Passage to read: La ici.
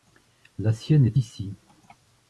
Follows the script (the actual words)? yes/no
no